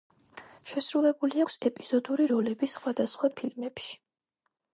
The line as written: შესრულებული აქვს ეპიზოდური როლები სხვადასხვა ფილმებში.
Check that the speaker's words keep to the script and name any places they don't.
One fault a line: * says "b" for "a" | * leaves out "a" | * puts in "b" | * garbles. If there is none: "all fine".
all fine